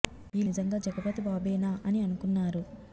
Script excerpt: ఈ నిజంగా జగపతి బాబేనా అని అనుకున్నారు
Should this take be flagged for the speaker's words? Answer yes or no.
no